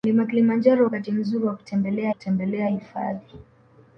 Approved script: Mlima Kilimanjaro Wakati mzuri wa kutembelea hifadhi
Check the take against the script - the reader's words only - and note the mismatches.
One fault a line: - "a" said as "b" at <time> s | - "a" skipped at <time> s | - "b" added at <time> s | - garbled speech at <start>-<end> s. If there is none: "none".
- "kutembelea" added at 2.1 s